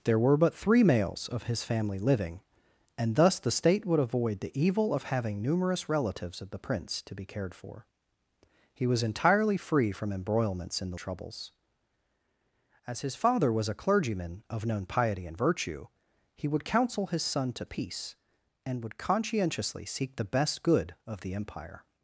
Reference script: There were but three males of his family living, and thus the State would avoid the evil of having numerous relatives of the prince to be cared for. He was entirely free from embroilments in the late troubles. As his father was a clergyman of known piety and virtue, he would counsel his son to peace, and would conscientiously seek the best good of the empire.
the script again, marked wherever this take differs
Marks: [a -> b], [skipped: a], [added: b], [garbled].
There were but three males of his family living, and thus the State would avoid the evil of having numerous relatives of the prince to be cared for. He was entirely free from embroilments in the [skipped: late] troubles. As his father was a clergyman of known piety and virtue, he would counsel his son to peace, and would conscientiously seek the best good of the empire.